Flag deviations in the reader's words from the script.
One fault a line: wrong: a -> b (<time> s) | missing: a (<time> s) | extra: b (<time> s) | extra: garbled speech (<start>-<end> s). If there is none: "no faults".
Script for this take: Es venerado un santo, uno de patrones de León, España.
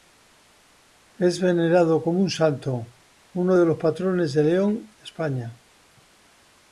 extra: como (2.0 s)
extra: los (3.6 s)